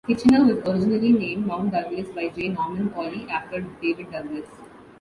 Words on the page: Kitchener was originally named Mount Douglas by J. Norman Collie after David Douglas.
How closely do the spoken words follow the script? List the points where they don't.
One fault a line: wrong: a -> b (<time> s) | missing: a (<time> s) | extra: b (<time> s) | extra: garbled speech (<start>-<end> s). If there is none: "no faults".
no faults